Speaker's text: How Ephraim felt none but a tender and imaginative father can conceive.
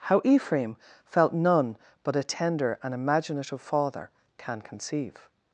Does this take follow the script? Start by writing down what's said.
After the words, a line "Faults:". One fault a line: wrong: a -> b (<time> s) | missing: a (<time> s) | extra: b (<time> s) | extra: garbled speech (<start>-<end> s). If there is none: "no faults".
How Ephraim felt none but a tender and imaginative father can conceive.
Faults:
no faults